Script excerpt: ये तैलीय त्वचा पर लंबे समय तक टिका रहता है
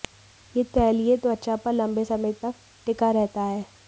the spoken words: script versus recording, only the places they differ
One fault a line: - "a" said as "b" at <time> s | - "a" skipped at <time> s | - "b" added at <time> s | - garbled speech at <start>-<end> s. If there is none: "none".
none